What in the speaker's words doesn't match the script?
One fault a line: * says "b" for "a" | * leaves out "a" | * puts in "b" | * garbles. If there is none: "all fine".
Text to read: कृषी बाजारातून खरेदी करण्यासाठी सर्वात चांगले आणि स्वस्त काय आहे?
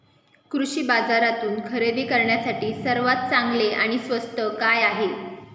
all fine